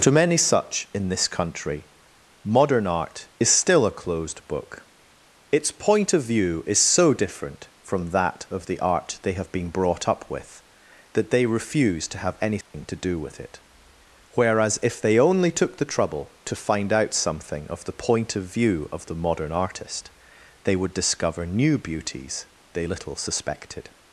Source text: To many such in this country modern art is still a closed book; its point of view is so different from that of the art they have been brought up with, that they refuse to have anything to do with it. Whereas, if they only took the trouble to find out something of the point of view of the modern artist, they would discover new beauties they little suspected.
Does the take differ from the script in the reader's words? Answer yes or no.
no